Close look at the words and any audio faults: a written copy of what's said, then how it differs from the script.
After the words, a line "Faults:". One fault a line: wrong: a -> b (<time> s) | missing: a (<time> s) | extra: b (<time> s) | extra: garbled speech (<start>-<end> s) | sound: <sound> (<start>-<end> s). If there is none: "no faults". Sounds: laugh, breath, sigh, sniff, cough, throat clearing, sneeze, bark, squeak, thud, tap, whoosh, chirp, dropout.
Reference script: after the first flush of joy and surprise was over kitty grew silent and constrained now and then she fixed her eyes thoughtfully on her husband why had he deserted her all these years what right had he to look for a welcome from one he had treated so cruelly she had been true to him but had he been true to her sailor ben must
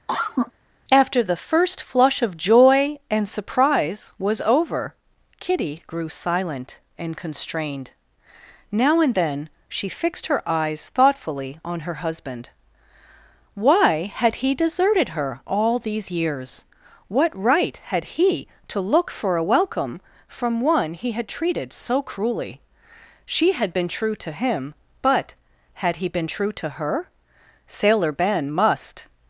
after the first flush of joy and surprise was over kitty grew silent and constrained now and then she fixed her eyes thoughtfully on her husband why had he deserted her all these years what right had he to look for a welcome from one he had treated so cruelly she had been true to him but had he been true to her sailor ben must
Faults:
sound: cough (0.1-0.5 s)